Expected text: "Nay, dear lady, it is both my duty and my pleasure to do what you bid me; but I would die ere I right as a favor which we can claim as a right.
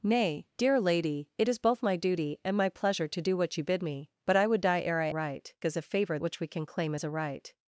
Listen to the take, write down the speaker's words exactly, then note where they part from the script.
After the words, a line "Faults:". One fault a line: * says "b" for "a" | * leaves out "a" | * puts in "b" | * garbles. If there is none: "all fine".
"Nay, dear lady, it is both my duty and my pleasure to do what you bid me; but I would die ere I right as a favor which we can claim as a right.
Faults:
all fine